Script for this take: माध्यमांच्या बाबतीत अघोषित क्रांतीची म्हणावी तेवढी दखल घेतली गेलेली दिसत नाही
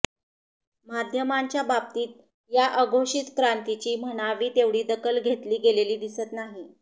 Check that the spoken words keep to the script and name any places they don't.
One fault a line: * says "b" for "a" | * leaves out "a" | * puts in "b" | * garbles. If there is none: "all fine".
* puts in "या"